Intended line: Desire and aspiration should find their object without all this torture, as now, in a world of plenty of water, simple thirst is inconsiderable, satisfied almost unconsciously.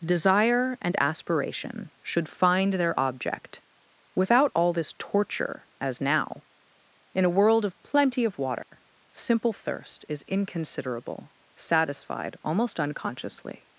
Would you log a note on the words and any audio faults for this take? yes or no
yes